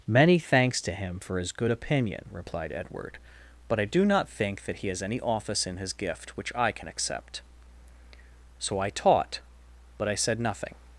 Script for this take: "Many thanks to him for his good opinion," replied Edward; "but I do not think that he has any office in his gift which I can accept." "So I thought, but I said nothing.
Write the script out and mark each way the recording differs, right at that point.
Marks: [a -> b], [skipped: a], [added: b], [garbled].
"Many thanks to him for his good opinion," replied Edward; "but I do not think that he has any office in his gift which I can accept." "So I [thought, -> taught] but I said nothing.